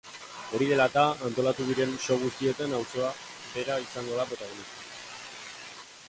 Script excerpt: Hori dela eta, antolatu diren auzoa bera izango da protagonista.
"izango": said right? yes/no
yes